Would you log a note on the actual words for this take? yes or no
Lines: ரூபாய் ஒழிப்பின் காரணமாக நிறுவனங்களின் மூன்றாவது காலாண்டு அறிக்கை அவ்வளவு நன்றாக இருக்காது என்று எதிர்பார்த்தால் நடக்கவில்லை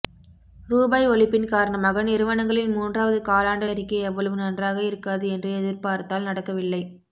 no